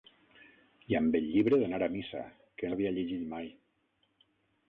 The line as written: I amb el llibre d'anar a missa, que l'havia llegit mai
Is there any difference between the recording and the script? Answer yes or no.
no